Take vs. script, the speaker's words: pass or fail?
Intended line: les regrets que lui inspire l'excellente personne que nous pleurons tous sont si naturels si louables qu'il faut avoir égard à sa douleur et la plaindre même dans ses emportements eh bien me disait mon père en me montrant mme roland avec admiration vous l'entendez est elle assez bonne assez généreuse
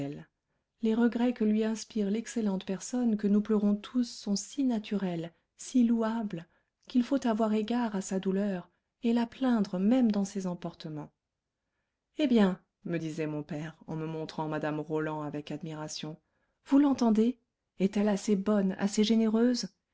pass